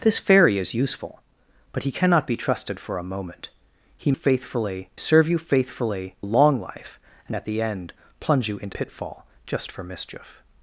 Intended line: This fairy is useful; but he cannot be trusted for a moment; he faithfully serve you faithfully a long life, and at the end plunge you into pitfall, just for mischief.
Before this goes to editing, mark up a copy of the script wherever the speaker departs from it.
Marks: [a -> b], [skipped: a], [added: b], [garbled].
This fairy is useful; but he cannot be trusted for a moment; he faithfully serve you faithfully a long life, and at the end plunge you into pitfall, just for mischief.